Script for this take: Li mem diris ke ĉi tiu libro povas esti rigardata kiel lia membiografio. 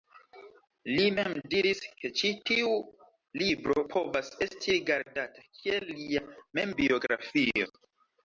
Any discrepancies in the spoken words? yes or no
no